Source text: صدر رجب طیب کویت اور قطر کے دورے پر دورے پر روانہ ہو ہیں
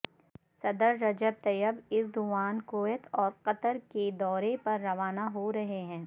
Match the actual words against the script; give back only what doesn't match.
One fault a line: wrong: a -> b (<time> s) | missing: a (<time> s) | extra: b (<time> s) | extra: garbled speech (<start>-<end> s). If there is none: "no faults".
extra: ایردوان (1.9 s)
missing: دورے پر (4.8 s)
extra: رہے (5.5 s)